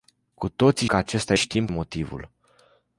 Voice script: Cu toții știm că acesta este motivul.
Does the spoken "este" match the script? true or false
false